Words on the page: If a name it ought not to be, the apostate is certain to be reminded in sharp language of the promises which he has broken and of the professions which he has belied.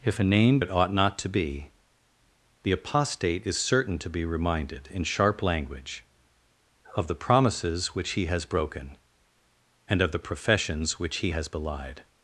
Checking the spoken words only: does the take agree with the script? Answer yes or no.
yes